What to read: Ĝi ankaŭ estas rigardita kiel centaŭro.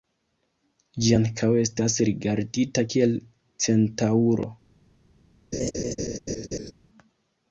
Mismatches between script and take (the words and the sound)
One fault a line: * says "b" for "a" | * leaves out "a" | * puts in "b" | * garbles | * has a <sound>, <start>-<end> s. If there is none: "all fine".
* has a laugh, 5.5-6.7 s